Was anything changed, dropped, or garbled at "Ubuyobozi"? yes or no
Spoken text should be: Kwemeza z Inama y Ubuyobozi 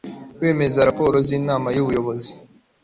no